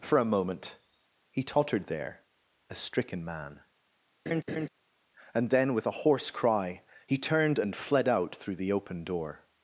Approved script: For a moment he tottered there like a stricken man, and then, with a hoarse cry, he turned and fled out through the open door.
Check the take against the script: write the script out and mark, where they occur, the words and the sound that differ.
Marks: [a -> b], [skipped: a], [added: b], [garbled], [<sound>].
For a moment he tottered there [skipped: like] a stricken man, [laugh] and then, with a hoarse cry, he turned and fled out through the open door.